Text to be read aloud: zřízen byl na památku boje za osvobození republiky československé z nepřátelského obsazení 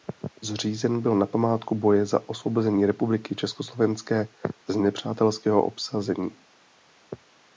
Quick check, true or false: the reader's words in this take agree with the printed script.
true